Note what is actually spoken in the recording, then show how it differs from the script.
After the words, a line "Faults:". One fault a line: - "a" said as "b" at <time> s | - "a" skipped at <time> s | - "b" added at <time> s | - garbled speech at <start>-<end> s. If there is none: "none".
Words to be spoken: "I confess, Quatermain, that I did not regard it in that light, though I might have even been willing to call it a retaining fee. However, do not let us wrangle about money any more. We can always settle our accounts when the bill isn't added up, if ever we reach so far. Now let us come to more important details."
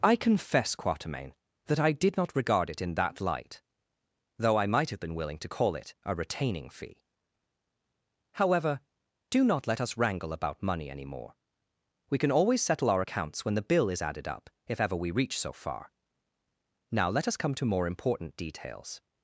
"I confess, Quatermain, that I did not regard it in that light, though I might have been willing to call it a retaining fee. However, do not let us wrangle about money any more. We can always settle our accounts when the bill is added up, if ever we reach so far. Now let us come to more important details."
Faults:
- "even" skipped at 5.0 s
- "isn't" said as "is" at 13.9 s